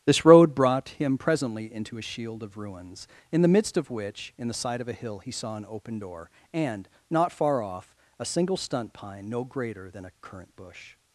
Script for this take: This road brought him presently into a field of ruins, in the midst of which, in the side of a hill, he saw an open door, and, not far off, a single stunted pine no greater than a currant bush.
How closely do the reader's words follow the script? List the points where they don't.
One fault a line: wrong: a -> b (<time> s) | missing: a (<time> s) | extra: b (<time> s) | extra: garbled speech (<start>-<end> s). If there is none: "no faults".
wrong: field -> shield (2.0 s)
wrong: stunted -> stunt (8.6 s)